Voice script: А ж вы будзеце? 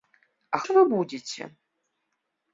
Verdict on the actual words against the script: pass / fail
pass